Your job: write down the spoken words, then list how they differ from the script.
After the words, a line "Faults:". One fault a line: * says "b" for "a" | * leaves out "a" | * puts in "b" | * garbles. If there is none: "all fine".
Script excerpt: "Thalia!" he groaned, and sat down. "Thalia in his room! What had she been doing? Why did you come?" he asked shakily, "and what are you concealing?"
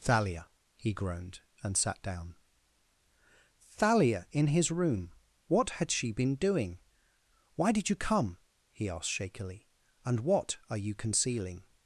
"Thalia!" he groaned, and sat down. "Thalia in his room! What had she been doing? Why did you come?" he asked shakily, "and what are you concealing?"
Faults:
all fine